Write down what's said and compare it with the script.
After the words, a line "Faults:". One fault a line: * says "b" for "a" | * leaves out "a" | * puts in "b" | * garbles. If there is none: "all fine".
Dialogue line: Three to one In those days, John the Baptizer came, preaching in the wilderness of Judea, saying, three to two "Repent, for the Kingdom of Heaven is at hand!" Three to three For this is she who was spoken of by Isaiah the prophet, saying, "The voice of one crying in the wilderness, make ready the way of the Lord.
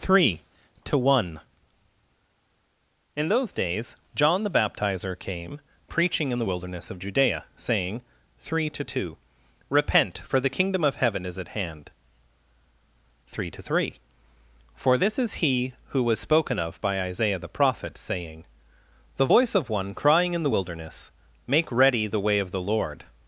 Three to one In those days, John the Baptizer came, preaching in the wilderness of Judea, saying, three to two "Repent, for the Kingdom of Heaven is at hand!" Three to three For this is he who was spoken of by Isaiah the prophet, saying, "The voice of one crying in the wilderness, make ready the way of the Lord.
Faults:
* says "he" for "she"